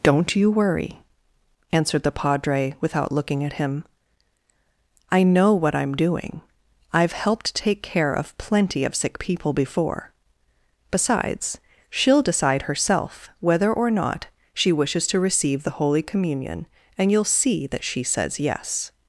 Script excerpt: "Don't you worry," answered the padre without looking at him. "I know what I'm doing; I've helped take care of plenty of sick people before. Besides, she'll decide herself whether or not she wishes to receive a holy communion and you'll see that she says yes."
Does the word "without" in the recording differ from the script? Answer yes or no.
no